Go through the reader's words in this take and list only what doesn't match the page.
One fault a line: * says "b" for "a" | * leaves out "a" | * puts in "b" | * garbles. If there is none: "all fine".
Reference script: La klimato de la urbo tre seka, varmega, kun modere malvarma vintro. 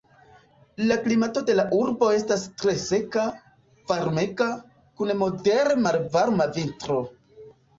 * puts in "estas"